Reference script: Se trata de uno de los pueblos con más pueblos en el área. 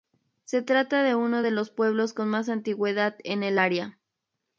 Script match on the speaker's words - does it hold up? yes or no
no